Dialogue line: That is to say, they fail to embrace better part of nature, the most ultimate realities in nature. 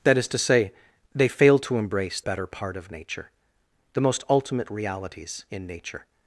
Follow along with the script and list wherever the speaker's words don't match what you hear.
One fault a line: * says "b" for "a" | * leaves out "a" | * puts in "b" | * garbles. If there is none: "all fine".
all fine